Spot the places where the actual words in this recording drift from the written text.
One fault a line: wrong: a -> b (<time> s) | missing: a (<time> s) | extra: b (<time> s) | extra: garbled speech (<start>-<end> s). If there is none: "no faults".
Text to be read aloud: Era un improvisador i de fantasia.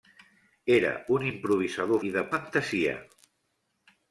no faults